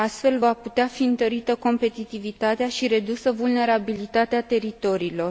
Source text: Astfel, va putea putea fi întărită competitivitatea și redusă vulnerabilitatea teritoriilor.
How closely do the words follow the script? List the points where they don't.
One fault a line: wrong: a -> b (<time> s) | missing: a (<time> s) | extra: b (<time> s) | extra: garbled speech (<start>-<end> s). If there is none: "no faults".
missing: putea (0.9 s)